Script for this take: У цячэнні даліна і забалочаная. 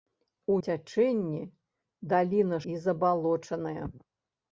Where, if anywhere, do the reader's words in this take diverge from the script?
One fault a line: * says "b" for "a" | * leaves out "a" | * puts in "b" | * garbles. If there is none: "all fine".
all fine